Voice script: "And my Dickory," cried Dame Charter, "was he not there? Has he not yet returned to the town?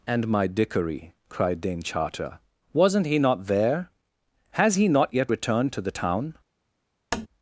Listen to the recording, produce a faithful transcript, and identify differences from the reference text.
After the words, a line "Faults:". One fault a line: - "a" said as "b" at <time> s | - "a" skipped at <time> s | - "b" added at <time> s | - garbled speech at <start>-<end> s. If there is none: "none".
"And my Dickory," cried Dame Charter, "wasn't he not there? Has he not yet returned to the town?
Faults:
- "was" said as "wasn't" at 2.7 s